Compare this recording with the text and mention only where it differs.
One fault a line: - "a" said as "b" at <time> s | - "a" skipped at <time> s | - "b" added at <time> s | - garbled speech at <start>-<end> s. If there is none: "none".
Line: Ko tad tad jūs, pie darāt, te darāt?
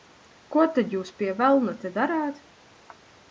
- "tad" skipped at 0.9 s
- "darāt" said as "velna" at 1.4 s